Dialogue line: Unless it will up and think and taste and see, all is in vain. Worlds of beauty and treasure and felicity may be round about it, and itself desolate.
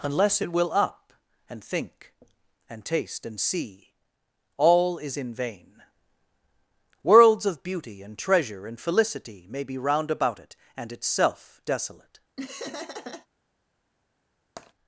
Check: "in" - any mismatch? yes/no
no